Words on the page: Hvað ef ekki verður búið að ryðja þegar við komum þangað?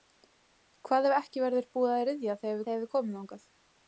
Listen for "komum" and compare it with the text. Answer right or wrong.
right